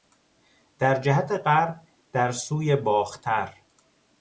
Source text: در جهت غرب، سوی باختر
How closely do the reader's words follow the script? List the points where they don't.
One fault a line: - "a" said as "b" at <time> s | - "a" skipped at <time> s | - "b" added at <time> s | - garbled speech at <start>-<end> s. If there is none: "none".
- "در" added at 2.1 s